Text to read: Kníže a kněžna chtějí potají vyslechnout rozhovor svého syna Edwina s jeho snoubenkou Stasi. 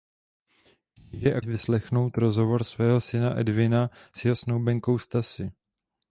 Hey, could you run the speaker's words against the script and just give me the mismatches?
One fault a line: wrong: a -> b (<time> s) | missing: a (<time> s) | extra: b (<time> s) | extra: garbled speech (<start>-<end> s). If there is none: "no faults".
missing: kněžna chtějí potají (1.4 s)